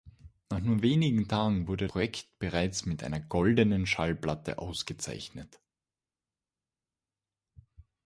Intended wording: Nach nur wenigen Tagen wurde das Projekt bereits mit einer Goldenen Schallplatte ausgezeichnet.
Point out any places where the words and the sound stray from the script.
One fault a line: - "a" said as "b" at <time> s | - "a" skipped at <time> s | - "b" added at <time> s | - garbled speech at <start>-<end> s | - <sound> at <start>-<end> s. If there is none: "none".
- "das" skipped at 1.9 s